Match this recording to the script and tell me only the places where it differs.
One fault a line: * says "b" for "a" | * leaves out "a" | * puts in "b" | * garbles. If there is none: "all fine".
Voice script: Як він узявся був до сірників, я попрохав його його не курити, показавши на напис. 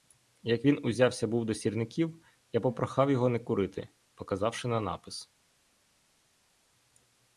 * leaves out "його"